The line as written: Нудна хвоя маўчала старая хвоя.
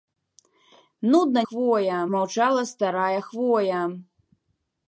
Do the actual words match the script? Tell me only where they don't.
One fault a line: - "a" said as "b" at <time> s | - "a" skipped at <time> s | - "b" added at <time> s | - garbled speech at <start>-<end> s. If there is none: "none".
none